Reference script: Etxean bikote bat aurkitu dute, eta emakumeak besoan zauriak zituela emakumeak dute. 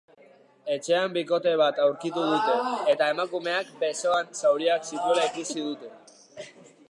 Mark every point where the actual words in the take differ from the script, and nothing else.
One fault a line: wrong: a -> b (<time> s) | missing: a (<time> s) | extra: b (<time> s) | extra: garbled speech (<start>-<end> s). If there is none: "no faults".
wrong: emakumeak -> ikusi (5.3 s)